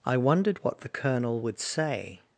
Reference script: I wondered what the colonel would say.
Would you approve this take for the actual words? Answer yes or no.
yes